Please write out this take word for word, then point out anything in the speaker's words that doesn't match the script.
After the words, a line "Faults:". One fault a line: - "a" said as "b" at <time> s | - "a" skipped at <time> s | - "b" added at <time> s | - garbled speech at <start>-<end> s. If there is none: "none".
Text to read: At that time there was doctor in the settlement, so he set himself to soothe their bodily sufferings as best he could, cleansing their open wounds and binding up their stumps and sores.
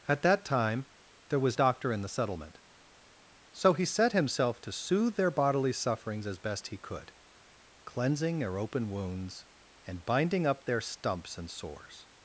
At that time there was doctor in the settlement, so he set himself to soothe their bodily sufferings as best he could, cleansing their open wounds and binding up their stumps and sores.
Faults:
none